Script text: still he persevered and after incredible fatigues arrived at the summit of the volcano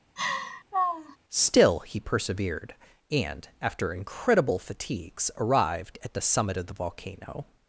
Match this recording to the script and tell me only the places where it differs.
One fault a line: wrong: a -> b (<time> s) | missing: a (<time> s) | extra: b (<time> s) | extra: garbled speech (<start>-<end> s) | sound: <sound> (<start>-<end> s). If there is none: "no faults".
sound: laugh (0.2-1.2 s)